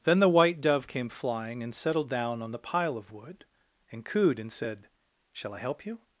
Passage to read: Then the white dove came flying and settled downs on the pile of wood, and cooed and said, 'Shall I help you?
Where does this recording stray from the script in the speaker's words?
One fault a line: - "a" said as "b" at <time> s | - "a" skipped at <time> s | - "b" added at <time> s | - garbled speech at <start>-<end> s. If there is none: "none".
- "downs" said as "down" at 2.1 s